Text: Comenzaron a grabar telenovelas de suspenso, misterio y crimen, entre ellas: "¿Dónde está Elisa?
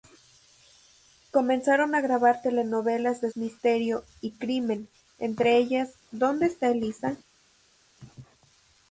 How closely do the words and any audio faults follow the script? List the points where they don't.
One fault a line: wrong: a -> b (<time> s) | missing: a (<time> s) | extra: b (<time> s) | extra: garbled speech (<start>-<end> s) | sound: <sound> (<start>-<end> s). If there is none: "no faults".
missing: suspenso (3.3 s)